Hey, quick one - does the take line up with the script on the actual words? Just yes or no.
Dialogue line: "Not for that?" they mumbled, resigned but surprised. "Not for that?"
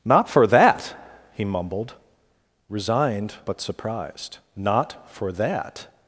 no